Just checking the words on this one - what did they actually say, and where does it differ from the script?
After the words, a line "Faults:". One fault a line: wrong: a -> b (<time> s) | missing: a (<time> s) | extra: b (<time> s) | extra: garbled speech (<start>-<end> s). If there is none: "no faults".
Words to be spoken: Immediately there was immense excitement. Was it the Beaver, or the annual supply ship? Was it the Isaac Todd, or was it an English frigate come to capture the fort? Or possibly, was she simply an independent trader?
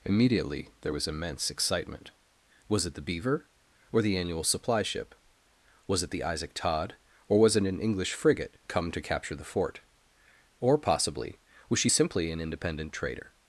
Immediately there was immense excitement. Was it the Beaver, or the annual supply ship? Was it the Isaac Todd, or was it an English frigate come to capture the fort? Or possibly, was she simply an independent trader?
Faults:
no faults